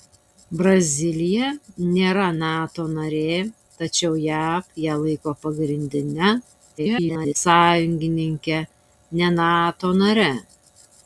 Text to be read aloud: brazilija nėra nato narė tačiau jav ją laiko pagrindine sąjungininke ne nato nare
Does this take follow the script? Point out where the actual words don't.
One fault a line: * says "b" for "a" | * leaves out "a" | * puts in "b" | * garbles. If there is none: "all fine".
* garbles